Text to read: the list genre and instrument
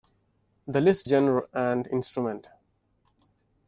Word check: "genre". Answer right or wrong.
right